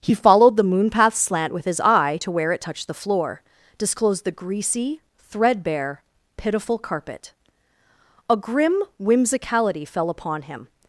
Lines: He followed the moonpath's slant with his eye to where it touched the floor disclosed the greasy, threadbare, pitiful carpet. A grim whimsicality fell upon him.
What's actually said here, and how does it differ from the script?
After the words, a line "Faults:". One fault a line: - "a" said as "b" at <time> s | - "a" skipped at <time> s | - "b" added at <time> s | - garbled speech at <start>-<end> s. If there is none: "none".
He followed the moonpath's slant with his eye to where it touched the floor disclosed the greasy, threadbare, pitiful carpet. A grim whimsicality fell upon him.
Faults:
none